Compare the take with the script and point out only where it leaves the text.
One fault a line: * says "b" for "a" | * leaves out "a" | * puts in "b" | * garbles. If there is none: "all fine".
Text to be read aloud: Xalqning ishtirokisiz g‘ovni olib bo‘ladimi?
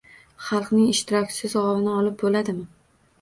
all fine